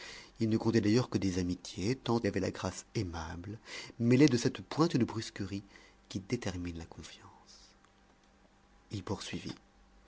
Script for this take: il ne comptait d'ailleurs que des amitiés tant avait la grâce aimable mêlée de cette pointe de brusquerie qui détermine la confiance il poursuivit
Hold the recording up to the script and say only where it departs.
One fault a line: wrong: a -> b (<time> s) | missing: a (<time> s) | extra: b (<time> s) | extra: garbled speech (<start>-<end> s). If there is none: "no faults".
no faults